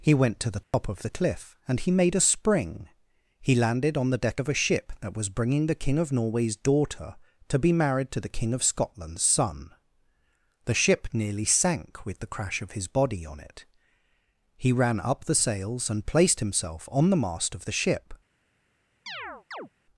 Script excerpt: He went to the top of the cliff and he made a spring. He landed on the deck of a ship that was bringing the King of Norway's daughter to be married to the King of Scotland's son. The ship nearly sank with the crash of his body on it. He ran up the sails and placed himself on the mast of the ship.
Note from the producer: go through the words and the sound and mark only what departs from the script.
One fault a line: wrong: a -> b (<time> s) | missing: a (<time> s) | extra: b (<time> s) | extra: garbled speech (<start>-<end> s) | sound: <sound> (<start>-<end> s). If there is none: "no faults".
sound: dropout (0.6-0.7 s)
sound: chirp (19.1-19.7 s)